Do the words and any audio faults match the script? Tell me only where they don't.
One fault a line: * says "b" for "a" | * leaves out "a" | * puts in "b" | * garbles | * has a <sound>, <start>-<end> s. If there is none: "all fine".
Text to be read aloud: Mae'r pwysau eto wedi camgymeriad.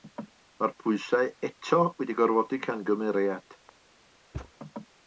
* puts in "gorfodi"
* has a thud, 4.3-4.5 s